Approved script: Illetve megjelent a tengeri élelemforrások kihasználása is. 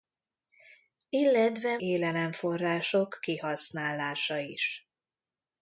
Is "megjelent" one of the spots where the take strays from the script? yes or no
yes